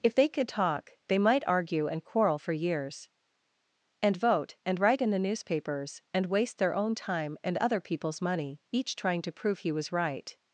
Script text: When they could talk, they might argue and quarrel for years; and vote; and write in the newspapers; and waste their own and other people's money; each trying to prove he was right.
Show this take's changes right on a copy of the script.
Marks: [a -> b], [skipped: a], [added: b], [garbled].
[When -> If] they could talk, they might argue and quarrel for years; and vote; and write in the newspapers; and waste their own [added: time] and other people's money; each trying to prove he was right.